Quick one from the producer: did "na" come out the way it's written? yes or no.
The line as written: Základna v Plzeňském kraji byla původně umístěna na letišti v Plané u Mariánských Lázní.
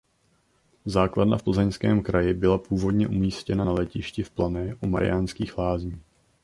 yes